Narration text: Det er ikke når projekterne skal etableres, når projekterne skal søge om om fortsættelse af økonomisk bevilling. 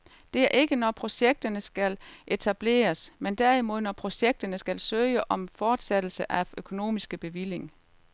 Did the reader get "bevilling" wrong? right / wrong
right